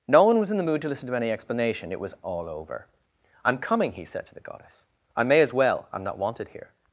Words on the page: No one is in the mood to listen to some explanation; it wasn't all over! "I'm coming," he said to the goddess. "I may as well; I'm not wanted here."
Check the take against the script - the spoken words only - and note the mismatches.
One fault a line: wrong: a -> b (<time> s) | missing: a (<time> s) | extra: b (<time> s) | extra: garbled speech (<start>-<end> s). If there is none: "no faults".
wrong: is -> was (0.4 s)
wrong: some -> any (1.2 s)
wrong: wasn't -> was (2.0 s)